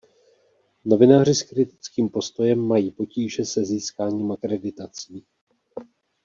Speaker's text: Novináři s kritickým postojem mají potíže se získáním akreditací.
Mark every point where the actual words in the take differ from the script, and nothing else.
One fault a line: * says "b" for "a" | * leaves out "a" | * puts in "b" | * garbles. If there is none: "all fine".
all fine